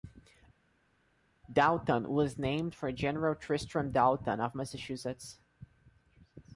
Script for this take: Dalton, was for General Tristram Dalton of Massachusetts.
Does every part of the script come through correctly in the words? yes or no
no